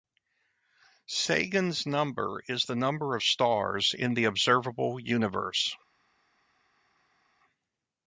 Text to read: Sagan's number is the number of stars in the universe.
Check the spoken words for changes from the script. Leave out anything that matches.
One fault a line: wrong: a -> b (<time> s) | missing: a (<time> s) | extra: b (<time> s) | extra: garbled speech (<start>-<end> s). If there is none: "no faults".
extra: observable (4.2 s)